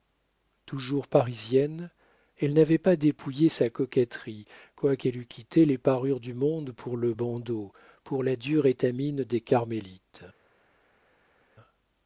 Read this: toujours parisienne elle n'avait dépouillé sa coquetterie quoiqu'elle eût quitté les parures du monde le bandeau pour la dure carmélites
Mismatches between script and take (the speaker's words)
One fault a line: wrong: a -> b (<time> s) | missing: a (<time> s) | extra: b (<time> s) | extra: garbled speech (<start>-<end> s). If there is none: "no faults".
extra: pas (2.8 s)
extra: pour (6.7 s)
extra: étamine des (8.7 s)